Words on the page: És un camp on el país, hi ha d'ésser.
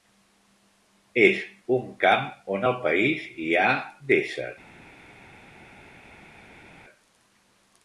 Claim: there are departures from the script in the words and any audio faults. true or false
false